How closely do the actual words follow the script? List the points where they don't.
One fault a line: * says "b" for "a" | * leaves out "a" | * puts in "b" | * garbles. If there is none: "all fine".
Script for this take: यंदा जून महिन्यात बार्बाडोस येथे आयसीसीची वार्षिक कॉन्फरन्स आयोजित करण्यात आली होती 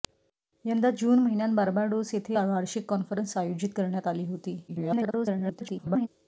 * leaves out "आयसीसीची"
* garbles